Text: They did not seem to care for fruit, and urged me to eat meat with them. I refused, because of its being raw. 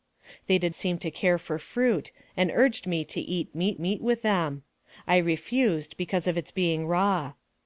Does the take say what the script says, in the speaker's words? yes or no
no